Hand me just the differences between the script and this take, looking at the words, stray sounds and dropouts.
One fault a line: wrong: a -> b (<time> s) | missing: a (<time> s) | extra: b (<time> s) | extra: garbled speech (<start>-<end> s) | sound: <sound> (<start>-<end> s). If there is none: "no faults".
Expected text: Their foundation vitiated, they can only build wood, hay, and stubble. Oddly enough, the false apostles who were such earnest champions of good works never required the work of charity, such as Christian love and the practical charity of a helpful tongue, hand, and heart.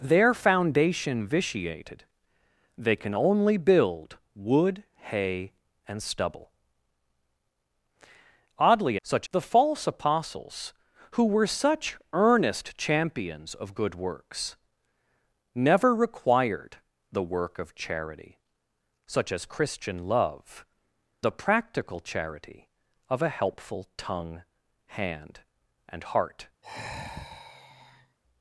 wrong: enough -> such (9.0 s)
missing: and (20.7 s)
sound: sigh (26.6-28.2 s)